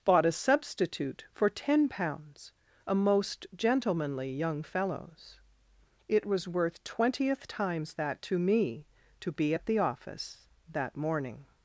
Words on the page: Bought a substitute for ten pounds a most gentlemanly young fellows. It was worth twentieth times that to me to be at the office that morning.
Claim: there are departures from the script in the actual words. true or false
false